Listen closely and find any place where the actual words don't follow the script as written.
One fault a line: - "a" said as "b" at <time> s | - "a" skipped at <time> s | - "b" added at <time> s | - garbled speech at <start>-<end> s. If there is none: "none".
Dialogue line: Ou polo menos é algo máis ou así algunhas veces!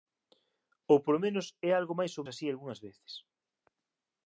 none